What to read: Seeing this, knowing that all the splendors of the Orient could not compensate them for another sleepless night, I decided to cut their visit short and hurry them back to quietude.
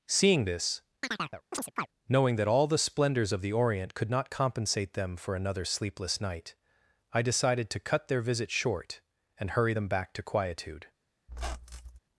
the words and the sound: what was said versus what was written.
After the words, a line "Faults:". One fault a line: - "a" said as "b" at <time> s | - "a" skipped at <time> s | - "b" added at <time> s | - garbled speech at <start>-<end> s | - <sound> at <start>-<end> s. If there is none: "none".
Seeing this, knowing that all the splendors of the Orient could not compensate them for another sleepless night, I decided to cut their visit short and hurry them back to quietude.
Faults:
- chirp at 1.0-1.9 s
- squeak at 11.3-12.0 s